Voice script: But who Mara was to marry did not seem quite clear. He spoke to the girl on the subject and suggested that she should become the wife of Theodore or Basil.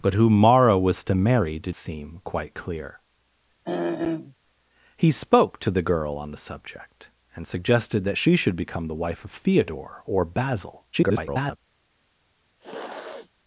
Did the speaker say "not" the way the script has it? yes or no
no